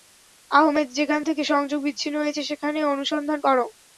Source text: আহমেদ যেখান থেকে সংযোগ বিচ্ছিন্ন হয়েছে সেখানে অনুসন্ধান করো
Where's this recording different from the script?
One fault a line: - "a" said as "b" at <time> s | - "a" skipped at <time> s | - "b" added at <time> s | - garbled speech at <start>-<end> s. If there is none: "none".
none